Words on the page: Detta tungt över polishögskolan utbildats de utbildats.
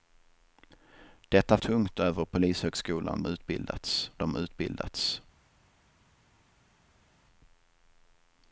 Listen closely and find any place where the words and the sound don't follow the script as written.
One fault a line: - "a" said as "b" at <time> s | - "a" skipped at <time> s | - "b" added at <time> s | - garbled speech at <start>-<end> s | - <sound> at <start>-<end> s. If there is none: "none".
none